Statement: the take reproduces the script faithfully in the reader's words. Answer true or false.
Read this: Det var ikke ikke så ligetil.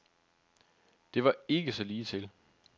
false